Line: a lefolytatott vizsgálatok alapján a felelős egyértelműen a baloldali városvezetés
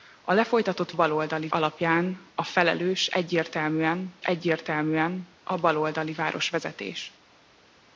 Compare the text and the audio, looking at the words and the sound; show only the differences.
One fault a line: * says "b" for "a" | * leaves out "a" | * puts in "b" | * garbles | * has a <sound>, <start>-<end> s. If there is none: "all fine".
* says "baloldali" for "vizsgálatok"
* puts in "egyértelműen"